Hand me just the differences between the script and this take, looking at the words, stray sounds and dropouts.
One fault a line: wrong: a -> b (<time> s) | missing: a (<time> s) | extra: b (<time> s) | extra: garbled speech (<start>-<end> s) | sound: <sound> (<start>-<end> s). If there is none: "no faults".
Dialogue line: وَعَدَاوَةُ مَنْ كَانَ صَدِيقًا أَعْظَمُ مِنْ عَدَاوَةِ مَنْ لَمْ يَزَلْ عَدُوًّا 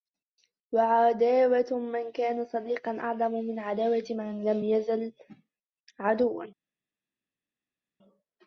no faults